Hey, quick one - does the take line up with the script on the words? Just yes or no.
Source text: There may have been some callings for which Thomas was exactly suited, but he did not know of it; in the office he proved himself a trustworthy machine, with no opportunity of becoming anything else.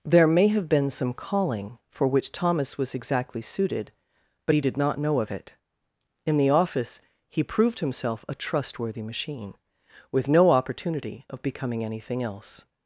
no